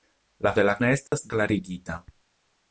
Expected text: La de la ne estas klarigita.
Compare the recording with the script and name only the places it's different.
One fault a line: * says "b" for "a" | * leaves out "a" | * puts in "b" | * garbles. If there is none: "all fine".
all fine